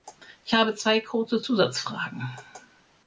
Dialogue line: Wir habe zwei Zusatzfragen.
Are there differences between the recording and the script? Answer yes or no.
yes